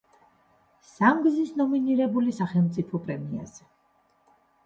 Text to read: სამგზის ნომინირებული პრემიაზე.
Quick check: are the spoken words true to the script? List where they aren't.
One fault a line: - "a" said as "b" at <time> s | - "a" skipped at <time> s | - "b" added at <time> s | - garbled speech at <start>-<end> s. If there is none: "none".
- "სახელმწიფო" added at 2.4 s